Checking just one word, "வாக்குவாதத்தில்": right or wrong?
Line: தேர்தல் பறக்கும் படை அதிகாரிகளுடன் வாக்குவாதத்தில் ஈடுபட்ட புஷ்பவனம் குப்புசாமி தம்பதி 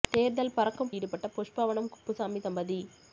wrong